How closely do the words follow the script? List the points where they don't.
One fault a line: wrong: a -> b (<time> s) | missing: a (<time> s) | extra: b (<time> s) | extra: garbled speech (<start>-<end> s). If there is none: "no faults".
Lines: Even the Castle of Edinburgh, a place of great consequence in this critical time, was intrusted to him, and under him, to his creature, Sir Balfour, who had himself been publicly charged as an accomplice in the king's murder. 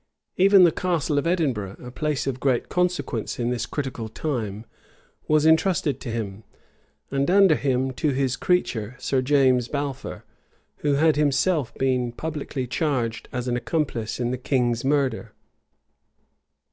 extra: James (9.2 s)